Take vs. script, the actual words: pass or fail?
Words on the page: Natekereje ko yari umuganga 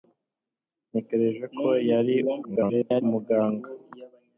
fail